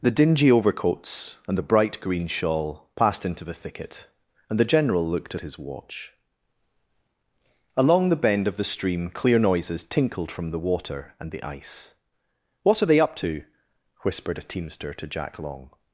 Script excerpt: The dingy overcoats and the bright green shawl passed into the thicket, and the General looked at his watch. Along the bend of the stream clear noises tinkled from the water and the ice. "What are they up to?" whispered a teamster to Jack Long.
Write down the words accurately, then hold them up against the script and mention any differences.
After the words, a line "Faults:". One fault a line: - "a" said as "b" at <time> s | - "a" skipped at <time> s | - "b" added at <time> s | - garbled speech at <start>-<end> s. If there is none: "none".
The dingy overcoats and the bright green shawl passed into the thicket, and the General looked at his watch. Along the bend of the stream clear noises tinkled from the water and the ice. "What are they up to?" whispered a teamster to Jack Long.
Faults:
none